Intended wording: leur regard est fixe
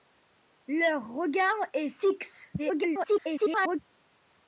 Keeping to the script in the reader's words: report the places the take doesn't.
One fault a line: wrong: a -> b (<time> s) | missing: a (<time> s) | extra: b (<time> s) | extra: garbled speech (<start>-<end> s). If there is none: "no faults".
extra: garbled speech (2.6-3.8 s)